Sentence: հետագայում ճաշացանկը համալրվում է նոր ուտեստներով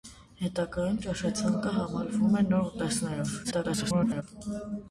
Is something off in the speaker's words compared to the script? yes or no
yes